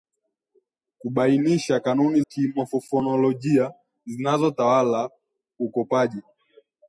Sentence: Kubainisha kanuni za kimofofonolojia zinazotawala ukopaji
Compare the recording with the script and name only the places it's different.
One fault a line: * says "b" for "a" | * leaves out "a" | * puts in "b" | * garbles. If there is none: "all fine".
* leaves out "za"